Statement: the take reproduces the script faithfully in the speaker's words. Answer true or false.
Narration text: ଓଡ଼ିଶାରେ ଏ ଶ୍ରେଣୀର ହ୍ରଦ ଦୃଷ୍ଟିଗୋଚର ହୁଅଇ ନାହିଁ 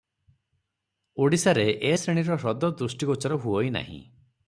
true